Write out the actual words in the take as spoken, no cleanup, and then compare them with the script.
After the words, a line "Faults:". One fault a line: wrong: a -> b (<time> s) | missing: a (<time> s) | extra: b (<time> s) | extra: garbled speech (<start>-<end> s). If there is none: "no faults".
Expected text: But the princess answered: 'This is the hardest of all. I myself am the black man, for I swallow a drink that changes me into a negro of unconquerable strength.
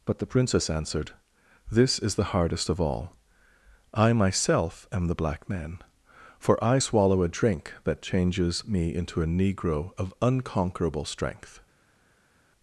But the princess answered: 'This is the hardest of all. I myself am the black man, for I swallow a drink that changes me into a negro of unconquerable strength.
Faults:
no faults